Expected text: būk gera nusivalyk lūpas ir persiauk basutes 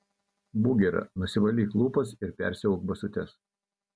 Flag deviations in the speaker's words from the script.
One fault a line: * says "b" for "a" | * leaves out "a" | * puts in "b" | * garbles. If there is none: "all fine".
all fine